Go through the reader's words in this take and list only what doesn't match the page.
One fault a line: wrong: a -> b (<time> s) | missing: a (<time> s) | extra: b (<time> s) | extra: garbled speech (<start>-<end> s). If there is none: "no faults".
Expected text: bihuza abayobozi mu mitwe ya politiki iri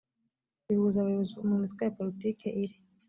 no faults